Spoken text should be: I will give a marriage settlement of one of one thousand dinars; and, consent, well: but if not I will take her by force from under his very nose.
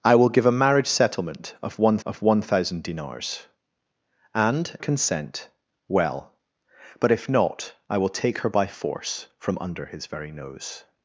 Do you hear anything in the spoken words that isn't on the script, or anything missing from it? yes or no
no